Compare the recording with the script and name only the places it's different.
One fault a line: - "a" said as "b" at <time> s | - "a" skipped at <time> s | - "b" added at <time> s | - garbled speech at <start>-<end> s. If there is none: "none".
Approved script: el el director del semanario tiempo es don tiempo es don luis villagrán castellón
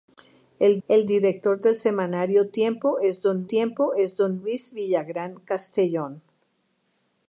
none